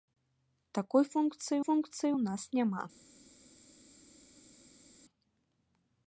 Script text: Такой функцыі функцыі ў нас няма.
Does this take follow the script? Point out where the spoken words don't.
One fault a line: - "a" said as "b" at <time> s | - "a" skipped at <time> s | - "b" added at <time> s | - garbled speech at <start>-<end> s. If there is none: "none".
none